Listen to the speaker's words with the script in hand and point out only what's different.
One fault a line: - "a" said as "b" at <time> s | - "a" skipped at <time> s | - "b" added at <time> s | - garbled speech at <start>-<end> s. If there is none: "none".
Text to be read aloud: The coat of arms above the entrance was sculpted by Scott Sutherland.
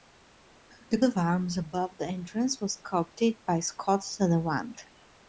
- "coat" skipped at 1.0 s